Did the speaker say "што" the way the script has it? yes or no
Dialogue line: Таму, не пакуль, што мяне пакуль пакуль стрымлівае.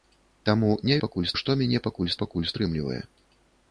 yes